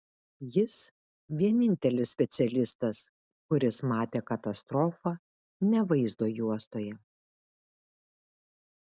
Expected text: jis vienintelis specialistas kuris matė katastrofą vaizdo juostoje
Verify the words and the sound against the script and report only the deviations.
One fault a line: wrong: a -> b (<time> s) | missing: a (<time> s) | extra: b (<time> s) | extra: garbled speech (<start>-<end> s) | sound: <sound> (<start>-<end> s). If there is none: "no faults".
extra: ne (5.7 s)